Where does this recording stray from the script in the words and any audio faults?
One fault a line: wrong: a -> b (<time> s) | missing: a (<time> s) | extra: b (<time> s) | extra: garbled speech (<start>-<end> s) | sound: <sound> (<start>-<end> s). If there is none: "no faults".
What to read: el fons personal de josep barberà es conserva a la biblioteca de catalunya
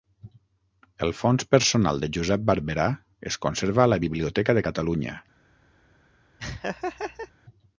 sound: laugh (6.4-7.3 s)